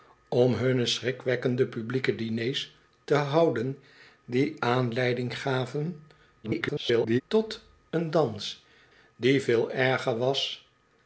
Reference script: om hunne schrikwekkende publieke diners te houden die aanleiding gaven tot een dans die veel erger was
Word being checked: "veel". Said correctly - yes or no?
yes